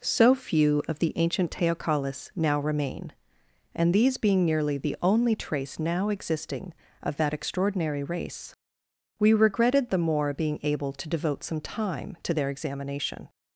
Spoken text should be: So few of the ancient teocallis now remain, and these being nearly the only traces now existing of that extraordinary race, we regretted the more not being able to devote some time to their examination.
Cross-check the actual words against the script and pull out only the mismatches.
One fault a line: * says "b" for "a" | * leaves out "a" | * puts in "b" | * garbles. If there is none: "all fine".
* says "trace" for "traces"
* leaves out "not"